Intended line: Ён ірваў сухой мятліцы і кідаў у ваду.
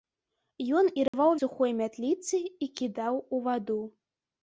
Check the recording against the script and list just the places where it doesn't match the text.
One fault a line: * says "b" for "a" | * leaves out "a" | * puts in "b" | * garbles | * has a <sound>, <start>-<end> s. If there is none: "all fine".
* has a dropout, 1.1-1.1 s